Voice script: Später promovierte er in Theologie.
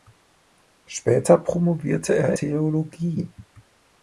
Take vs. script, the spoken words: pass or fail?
fail